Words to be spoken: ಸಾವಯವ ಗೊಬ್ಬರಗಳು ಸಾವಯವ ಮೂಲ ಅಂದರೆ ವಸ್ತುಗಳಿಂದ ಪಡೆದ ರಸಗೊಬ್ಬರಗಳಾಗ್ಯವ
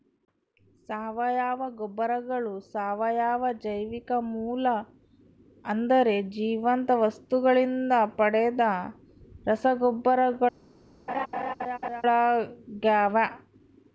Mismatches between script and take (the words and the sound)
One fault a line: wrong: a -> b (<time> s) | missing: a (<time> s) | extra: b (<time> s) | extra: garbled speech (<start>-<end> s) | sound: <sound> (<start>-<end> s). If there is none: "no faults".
extra: ಜೈವಿಕ (3.6 s)
extra: ಜೀವಂತ (6.3 s)
sound: laugh (11.1-12.0 s)